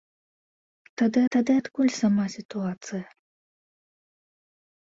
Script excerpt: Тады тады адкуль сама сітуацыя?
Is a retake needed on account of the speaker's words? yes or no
no